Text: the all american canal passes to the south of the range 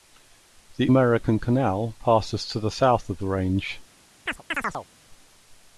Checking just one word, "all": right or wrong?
wrong